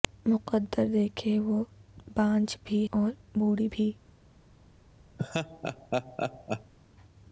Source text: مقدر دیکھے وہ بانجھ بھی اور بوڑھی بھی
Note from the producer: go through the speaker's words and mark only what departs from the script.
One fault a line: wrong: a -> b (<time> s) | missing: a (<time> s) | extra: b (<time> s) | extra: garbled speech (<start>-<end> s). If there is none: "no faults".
no faults